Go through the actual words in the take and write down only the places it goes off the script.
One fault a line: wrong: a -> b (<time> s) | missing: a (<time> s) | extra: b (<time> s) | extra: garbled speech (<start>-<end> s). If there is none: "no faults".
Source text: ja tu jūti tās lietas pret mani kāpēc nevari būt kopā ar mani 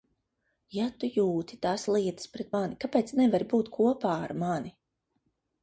no faults